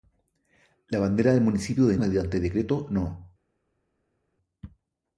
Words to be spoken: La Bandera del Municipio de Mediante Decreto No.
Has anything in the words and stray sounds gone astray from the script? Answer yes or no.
no